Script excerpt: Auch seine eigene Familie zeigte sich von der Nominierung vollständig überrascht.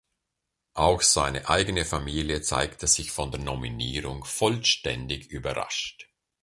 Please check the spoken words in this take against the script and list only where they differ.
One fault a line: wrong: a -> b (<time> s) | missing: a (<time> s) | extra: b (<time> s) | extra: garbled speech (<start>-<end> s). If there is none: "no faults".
no faults